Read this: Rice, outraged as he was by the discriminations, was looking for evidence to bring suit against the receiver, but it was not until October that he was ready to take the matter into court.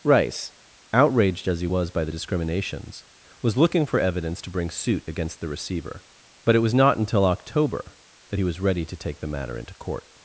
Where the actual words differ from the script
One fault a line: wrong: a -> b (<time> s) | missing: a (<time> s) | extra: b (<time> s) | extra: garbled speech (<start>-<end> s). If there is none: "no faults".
no faults